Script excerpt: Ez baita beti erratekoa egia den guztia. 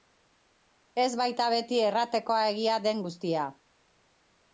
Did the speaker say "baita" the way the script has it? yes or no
yes